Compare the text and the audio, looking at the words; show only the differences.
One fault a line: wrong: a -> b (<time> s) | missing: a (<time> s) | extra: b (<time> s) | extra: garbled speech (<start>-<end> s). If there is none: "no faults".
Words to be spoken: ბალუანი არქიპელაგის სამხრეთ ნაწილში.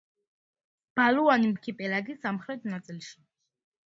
no faults